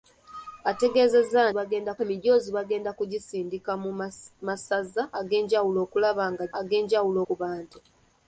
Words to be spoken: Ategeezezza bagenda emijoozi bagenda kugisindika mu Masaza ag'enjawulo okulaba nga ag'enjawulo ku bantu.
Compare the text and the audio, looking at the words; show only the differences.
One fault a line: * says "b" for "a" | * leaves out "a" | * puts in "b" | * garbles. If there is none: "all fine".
all fine